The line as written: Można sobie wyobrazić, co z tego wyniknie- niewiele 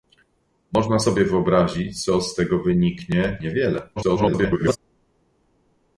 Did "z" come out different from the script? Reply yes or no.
no